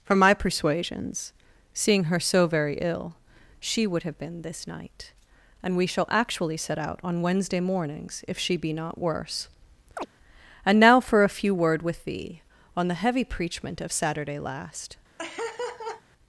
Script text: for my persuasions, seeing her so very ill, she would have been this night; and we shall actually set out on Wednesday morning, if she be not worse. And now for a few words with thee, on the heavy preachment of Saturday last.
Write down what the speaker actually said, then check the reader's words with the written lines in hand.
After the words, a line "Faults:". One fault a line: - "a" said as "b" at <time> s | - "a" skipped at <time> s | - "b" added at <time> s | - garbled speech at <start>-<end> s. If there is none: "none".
for my persuasions, seeing her so very ill, she would have been this night; and we shall actually set out on Wednesday mornings, if she be not worse. And now for a few word with thee, on the heavy preachment of Saturday last.
Faults:
- "morning" said as "mornings" at 7.6 s
- "words" said as "word" at 11.5 s